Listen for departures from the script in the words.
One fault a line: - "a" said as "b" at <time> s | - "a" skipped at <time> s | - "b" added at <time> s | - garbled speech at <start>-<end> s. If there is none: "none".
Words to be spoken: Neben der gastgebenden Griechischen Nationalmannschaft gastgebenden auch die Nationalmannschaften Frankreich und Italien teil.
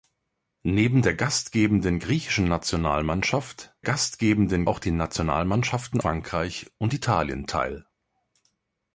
none